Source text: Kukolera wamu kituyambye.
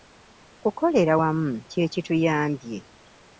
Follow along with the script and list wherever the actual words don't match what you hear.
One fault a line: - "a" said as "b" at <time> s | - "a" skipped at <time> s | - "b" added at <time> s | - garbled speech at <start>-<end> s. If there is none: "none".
- "kye" added at 1.7 s